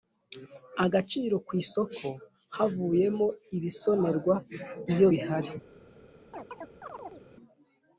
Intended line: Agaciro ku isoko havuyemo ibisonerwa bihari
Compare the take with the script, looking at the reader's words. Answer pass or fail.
fail